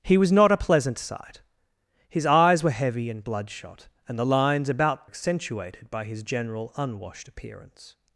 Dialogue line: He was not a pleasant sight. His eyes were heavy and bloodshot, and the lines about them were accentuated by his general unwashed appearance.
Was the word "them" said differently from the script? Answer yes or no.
yes